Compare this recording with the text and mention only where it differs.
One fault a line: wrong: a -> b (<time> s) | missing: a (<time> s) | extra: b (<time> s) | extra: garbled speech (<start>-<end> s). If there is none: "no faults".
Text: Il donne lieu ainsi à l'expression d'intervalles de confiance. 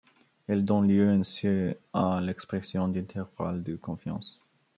wrong: Il -> Elle (0.5 s)